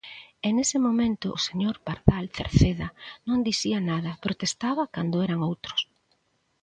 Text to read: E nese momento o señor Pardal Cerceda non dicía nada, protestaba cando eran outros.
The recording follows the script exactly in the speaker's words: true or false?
true